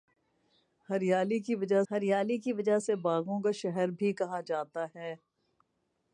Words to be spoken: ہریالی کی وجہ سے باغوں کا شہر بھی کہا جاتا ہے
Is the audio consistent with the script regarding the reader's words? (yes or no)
no